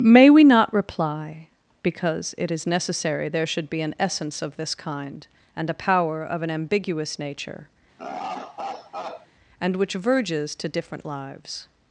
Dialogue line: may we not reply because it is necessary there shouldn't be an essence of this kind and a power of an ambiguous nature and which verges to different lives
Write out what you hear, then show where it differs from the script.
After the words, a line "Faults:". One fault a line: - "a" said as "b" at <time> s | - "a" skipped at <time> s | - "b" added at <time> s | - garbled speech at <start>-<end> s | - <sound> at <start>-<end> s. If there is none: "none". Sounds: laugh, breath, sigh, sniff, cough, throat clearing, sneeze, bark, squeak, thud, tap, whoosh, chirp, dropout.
may we not reply because it is necessary there should be an essence of this kind and a power of an ambiguous nature and which verges to different lives
Faults:
- "shouldn't" said as "should" at 3.5 s
- laugh at 8.0-9.3 s